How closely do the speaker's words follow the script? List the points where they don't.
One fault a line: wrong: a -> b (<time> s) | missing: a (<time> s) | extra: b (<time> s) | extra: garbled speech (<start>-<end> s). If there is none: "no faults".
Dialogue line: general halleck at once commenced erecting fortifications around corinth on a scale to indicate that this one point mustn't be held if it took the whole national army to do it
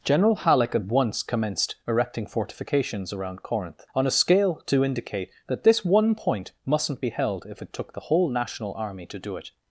no faults